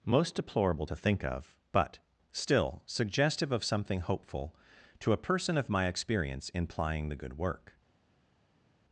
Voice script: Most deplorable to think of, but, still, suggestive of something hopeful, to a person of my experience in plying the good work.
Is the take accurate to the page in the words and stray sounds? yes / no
yes